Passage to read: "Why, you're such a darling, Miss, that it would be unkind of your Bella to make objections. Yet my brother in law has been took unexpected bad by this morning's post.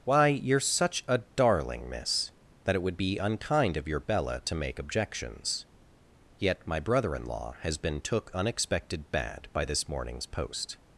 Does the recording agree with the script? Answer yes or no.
yes